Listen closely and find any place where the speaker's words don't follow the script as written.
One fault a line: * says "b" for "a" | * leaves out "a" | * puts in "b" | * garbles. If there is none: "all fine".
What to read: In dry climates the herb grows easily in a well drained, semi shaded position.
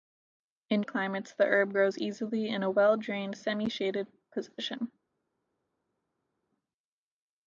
* leaves out "dry"